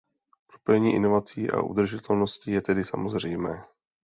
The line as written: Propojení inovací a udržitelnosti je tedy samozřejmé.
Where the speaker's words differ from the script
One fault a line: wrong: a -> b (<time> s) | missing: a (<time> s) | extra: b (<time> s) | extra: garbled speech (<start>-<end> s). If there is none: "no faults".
no faults